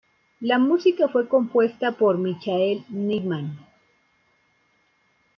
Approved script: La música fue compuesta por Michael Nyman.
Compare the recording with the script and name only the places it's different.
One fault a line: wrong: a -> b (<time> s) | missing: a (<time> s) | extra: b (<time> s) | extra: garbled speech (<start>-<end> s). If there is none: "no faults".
no faults